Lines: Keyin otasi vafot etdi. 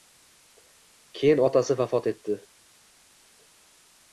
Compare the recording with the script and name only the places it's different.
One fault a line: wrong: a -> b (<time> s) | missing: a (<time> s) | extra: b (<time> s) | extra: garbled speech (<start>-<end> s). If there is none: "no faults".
no faults